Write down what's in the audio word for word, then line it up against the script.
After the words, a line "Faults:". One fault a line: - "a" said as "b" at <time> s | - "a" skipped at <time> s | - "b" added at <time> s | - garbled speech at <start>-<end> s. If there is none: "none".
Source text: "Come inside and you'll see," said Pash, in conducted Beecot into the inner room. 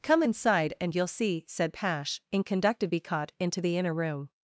"Come inside and you'll see," said Pash, in conducted Beecot into the inner room.
Faults:
none